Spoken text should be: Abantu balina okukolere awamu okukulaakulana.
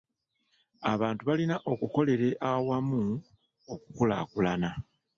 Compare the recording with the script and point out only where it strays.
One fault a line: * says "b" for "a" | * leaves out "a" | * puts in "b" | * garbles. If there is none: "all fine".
all fine